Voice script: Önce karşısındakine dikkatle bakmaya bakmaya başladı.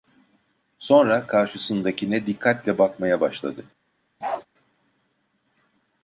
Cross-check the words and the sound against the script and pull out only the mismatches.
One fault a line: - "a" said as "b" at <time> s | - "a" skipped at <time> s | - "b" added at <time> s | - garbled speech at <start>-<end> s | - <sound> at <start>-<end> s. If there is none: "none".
- "Önce" said as "Sonra" at 0.8 s
- "bakmaya" skipped at 3.2 s
- bark at 4.2-4.5 s